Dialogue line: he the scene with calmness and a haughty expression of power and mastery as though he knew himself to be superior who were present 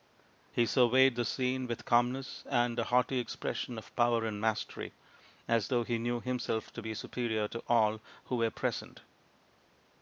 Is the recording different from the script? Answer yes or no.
yes